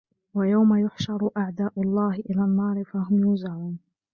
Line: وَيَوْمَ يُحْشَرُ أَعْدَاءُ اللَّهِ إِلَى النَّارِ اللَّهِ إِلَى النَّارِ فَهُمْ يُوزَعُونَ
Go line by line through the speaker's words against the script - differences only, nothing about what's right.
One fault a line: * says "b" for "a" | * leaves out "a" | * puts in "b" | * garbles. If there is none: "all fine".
* leaves out "اللَّهِ إِلَى النَّارِ"